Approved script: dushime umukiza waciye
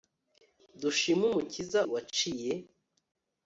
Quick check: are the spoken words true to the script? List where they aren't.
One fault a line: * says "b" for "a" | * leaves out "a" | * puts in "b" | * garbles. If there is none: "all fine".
all fine